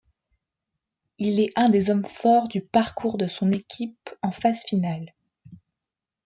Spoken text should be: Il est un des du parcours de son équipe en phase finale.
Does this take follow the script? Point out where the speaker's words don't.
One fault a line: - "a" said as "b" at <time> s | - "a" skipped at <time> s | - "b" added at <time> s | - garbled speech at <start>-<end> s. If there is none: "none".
- "hommes forts" added at 1.9 s